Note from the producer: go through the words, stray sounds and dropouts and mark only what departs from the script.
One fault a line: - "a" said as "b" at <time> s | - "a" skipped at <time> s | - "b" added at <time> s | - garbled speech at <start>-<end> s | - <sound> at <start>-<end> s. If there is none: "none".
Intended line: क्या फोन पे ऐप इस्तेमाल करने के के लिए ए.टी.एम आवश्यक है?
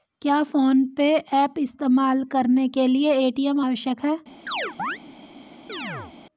- "के" skipped at 2.9 s
- chirp at 4.5-5.0 s
- chirp at 5.7-6.1 s